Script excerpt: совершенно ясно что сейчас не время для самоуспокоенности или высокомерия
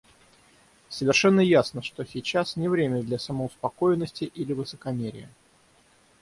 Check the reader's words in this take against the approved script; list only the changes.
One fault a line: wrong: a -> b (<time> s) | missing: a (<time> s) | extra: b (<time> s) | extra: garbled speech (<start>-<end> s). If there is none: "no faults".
no faults